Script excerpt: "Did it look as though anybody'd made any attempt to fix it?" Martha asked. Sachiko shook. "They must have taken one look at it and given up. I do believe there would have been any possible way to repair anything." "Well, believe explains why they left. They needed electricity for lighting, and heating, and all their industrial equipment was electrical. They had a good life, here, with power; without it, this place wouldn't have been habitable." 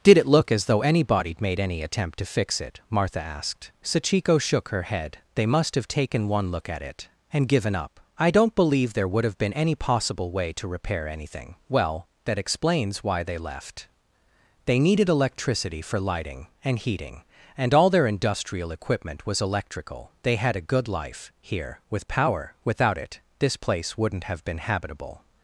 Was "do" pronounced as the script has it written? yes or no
no